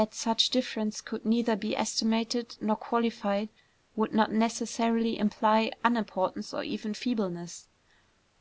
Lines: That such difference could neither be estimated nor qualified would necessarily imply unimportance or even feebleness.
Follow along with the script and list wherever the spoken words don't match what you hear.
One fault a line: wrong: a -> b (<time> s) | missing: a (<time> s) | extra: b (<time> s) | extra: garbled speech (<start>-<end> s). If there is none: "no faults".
extra: not (4.2 s)